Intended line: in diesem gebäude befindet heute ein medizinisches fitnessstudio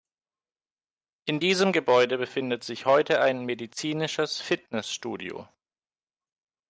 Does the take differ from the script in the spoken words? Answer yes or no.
yes